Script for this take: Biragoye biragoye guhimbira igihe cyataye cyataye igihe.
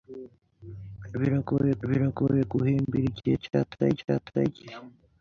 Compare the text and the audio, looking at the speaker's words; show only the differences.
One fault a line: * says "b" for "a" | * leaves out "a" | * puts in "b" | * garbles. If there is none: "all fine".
all fine